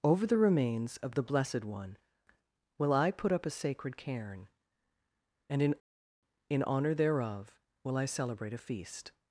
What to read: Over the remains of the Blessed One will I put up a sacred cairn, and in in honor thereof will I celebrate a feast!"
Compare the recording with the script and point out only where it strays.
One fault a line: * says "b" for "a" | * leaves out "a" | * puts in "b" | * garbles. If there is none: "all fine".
all fine